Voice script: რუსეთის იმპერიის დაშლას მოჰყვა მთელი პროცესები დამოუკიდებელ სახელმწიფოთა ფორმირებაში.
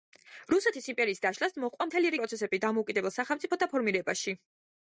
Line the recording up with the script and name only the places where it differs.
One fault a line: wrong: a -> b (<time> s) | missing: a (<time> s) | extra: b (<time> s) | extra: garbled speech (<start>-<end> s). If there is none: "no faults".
no faults